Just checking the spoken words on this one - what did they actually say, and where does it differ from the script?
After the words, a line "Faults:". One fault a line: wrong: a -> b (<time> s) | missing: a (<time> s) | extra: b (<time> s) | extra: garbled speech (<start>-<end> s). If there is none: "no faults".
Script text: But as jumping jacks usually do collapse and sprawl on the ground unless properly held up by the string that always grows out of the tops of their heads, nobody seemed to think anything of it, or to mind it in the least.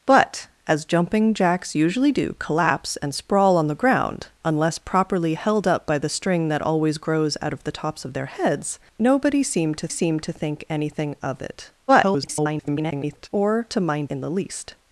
But as jumping jacks usually do collapse and sprawl on the ground unless properly held up by the string that always grows out of the tops of their heads, nobody seemed to seemed to think anything of it, [garbled] or to mind in the least.
Faults:
extra: seemed to (9.9 s)
extra: garbled speech (11.9-13.3 s)
missing: it (14.1 s)